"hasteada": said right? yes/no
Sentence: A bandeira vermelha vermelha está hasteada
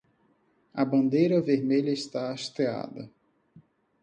yes